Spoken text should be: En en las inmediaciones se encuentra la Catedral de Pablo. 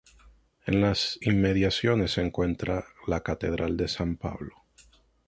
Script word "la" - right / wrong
right